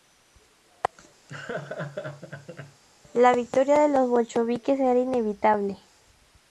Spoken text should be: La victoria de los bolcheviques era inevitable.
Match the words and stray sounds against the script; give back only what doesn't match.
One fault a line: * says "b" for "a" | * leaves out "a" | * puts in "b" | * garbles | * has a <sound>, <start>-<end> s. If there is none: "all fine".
* has a laugh, 1.3-2.8 s